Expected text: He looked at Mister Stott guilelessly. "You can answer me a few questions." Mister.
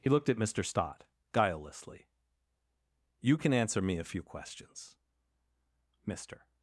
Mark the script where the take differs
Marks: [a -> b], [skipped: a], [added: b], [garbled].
He looked at Mister Stott guilelessly. "You can answer me a few questions." Mister.